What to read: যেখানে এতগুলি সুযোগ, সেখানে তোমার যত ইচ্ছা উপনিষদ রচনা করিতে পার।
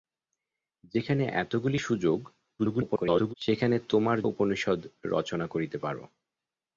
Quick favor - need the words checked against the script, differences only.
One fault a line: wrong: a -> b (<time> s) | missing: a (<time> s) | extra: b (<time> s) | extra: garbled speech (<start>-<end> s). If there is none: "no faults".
extra: garbled speech (2.6-3.3 s)
missing: যত ইচ্ছা (4.2 s)